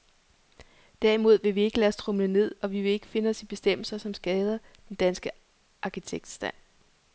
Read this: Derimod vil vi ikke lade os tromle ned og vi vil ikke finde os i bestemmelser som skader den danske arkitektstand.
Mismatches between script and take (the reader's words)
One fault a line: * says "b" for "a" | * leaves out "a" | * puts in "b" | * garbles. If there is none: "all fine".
all fine